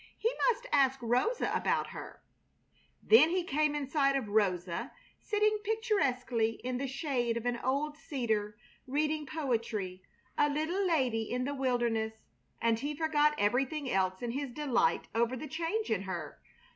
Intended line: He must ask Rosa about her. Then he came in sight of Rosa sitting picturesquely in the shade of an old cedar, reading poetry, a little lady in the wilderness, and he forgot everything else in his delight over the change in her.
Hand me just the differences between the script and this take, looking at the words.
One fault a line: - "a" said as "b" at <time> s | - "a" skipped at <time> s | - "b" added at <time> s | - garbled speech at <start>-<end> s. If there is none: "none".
none